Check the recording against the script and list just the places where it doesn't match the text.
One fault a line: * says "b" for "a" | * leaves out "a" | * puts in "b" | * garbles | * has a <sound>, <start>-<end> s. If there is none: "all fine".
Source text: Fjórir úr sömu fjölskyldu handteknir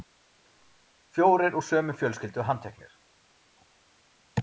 all fine